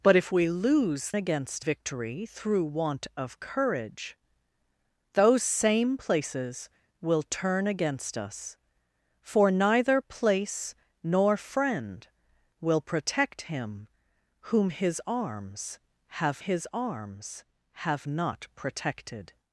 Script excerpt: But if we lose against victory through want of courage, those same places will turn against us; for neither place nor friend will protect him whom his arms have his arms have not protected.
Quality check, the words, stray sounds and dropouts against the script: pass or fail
pass